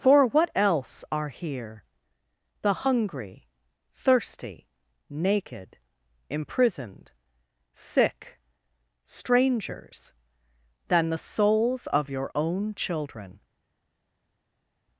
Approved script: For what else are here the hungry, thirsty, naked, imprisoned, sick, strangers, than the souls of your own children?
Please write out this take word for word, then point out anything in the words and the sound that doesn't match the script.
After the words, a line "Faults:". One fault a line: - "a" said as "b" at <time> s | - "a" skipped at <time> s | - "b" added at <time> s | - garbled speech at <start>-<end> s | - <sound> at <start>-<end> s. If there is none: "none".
For what else are here the hungry, thirsty, naked, imprisoned, sick, strangers, than the souls of your own children?
Faults:
none